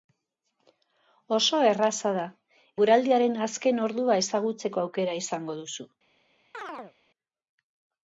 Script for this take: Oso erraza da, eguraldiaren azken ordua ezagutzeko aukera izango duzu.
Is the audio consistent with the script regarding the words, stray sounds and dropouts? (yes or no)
no